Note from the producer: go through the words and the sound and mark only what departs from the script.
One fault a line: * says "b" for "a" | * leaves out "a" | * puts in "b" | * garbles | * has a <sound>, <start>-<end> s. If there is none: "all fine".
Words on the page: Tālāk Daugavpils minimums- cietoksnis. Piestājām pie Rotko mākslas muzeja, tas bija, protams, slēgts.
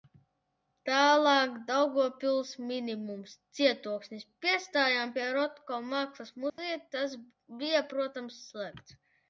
* has a dropout, 6.5-6.6 s